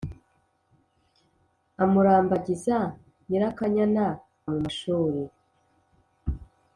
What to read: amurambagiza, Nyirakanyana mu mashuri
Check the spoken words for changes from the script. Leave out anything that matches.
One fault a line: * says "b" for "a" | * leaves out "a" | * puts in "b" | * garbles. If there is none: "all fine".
all fine